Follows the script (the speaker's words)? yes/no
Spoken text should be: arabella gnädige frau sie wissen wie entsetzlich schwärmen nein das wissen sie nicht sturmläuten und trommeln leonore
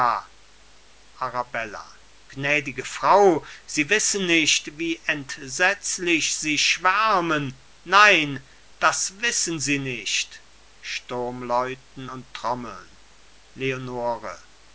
no